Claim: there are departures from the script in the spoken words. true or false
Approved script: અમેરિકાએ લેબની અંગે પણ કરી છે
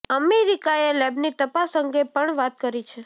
true